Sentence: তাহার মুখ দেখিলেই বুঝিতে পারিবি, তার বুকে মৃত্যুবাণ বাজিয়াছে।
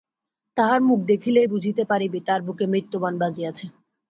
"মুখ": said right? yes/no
yes